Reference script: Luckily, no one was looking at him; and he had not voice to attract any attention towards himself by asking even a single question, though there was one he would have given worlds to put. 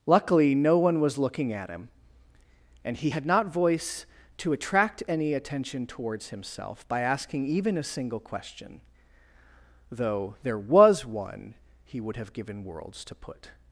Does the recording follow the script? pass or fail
pass